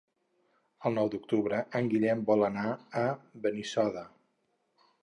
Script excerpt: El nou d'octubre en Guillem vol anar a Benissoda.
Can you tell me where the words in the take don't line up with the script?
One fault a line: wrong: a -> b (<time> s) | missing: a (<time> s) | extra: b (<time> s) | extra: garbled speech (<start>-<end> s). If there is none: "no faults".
no faults